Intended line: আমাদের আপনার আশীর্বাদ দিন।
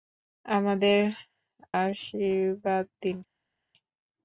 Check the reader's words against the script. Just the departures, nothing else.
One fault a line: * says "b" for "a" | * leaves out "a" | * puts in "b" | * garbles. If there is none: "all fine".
* leaves out "আপনার"